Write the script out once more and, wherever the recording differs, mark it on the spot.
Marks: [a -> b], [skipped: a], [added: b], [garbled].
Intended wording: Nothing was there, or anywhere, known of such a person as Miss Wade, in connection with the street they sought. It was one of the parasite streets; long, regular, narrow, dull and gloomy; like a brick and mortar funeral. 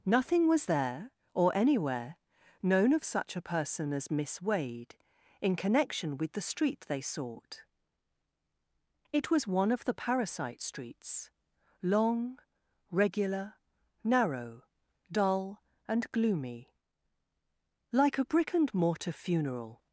Nothing was there, or anywhere, known of such a person as Miss Wade, in connection with the street they sought. It was one of the parasite streets; long, regular, narrow, dull and gloomy; like a brick and mortar funeral.